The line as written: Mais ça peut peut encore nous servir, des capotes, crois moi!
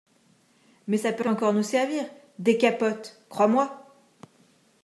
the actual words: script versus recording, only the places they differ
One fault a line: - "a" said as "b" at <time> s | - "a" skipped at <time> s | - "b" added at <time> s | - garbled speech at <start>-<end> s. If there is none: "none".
none